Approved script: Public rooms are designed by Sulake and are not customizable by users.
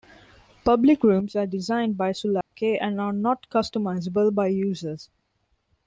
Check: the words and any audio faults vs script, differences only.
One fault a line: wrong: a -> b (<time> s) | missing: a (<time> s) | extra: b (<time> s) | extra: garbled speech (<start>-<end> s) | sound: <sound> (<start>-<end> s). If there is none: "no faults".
sound: dropout (2.4-2.5 s)